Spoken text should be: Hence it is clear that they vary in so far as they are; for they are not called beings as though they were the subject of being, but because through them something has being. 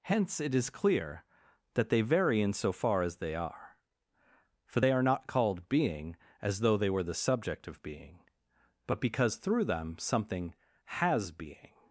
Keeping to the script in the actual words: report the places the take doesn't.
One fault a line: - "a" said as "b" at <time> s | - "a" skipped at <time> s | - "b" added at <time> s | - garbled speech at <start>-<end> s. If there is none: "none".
- "beings" said as "being" at 5.7 s